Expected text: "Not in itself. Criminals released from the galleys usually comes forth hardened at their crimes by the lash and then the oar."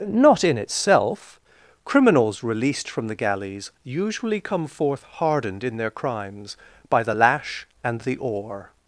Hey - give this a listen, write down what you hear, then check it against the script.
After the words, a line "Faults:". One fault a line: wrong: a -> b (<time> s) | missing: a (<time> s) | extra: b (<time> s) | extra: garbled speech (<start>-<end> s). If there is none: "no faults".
"Not in itself. Criminals released from the galleys usually come forth hardened in their crimes by the lash and the oar."
Faults:
wrong: comes -> come (4.4 s)
wrong: at -> in (5.6 s)
missing: then (8.0 s)